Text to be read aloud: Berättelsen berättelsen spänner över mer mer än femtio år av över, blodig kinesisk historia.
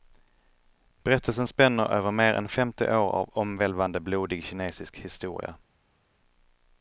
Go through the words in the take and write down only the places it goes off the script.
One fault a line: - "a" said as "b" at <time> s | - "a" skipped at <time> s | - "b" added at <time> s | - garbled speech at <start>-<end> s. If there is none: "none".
- "berättelsen" skipped at 1.5 s
- "mer" skipped at 2.3 s
- "över" said as "omvälvande" at 3.3 s